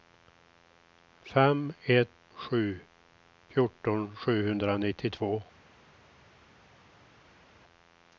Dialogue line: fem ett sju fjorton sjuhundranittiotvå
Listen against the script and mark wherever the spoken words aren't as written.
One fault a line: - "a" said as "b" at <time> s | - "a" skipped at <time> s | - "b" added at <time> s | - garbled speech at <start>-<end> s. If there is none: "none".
none